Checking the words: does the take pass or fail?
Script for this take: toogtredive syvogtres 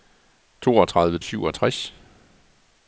pass